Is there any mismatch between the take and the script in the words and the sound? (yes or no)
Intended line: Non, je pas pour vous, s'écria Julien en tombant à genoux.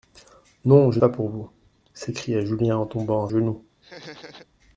yes